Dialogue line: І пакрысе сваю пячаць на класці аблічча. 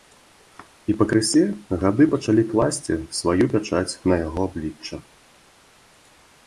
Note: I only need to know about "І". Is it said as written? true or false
true